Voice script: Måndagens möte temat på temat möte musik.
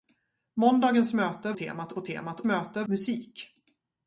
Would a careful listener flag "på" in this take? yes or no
no